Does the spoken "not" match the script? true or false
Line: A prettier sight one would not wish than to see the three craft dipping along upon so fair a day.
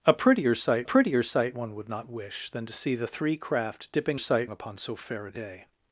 true